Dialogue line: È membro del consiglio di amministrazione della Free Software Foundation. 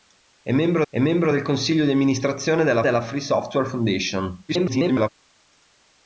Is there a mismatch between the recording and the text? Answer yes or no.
yes